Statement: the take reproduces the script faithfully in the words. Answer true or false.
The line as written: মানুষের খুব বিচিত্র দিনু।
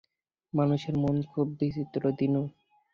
false